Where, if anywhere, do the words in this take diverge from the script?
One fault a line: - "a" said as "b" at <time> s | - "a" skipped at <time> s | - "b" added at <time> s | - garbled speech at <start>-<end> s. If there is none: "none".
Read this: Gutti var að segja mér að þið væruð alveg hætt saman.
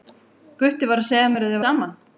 - "væruð alveg hætt" skipped at 1.6 s